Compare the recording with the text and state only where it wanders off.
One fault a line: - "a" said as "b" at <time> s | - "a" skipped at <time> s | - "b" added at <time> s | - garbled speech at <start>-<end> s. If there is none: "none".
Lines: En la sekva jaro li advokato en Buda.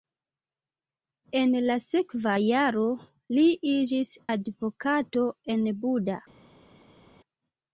- "iĝis" added at 3.8 s